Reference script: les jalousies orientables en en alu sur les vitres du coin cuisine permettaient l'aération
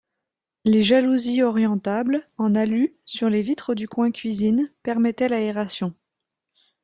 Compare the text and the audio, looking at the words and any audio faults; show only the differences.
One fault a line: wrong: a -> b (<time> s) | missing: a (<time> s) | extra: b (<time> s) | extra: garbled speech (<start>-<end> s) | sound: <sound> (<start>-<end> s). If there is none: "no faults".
missing: en (2.5 s)